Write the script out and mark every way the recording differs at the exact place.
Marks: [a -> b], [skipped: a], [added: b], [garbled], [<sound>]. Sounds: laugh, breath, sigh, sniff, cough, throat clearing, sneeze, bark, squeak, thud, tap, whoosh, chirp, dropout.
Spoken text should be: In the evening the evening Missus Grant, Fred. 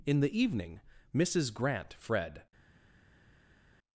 In the evening [skipped: the evening] Missus Grant, Fred.